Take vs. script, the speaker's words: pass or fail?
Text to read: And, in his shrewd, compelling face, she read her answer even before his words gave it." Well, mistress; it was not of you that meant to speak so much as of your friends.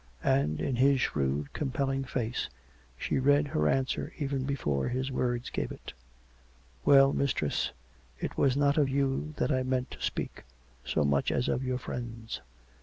fail